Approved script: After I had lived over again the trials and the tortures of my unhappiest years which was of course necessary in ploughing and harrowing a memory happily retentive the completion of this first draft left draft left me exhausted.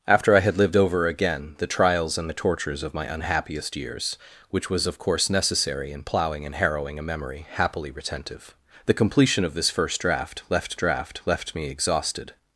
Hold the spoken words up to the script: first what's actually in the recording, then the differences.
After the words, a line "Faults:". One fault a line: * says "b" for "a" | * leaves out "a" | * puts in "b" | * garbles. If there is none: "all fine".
After I had lived over again the trials and the tortures of my unhappiest years which was of course necessary in ploughing and harrowing a memory happily retentive the completion of this first draft left draft left me exhausted.
Faults:
all fine